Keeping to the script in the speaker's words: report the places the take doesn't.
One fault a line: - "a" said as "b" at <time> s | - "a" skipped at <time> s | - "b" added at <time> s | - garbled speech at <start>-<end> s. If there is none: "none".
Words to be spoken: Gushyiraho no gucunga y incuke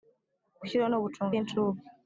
none